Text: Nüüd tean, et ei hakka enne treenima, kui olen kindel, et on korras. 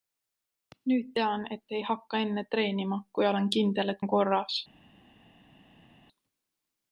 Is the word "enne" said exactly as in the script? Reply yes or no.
yes